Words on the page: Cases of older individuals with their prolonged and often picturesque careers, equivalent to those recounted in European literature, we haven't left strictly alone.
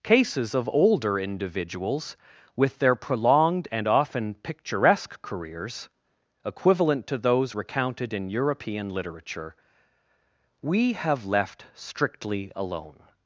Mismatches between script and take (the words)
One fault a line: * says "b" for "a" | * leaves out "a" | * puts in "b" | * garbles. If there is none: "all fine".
* says "have" for "haven't"